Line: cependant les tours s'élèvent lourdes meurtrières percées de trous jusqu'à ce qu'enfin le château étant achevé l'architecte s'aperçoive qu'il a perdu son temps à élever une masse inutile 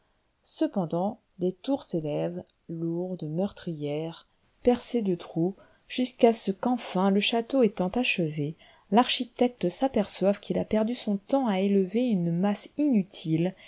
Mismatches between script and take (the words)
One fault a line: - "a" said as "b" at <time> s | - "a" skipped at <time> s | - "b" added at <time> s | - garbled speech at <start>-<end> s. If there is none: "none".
none